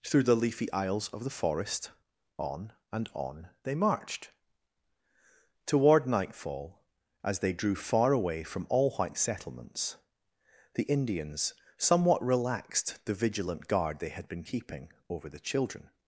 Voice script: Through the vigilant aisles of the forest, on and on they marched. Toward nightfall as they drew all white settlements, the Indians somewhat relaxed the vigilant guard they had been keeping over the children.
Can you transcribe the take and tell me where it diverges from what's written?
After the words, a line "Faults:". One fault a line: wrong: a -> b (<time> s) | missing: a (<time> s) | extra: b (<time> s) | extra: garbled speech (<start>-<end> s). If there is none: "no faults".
Through the leafy aisles of the forest, on and on they marched. Toward nightfall as they drew far away from all white settlements, the Indians somewhat relaxed the vigilant guard they had been keeping over the children.
Faults:
wrong: vigilant -> leafy (0.3 s)
extra: far away from (7.8 s)